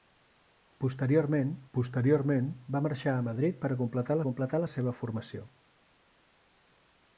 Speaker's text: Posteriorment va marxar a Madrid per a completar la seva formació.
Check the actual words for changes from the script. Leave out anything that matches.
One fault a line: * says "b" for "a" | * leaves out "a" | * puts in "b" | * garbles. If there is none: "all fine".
* puts in "posteriorment"
* puts in "completar"